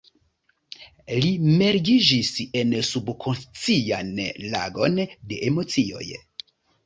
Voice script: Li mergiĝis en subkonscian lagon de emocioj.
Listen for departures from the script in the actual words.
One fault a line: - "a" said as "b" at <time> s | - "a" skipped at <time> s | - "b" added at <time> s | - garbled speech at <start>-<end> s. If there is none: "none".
none